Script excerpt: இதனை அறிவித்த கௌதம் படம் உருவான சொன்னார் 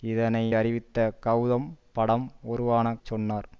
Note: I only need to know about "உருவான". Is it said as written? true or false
true